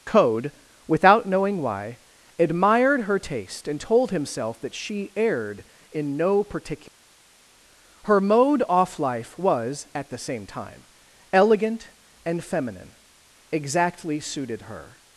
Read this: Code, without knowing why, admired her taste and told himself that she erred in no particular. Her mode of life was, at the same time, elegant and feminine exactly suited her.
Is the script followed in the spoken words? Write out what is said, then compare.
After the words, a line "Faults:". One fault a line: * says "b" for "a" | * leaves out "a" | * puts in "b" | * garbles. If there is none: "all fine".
Code, without knowing why, admired her taste and told himself that she erred in no particular. Her mode off life was, at the same time, elegant and feminine exactly suited her.
Faults:
* says "off" for "of"